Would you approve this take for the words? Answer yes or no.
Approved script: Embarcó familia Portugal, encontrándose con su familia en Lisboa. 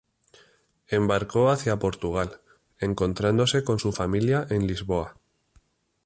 no